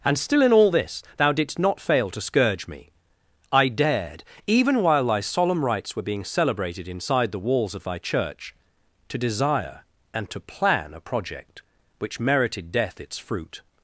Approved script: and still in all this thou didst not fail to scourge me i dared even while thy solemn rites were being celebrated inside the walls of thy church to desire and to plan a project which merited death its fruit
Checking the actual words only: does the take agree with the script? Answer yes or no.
yes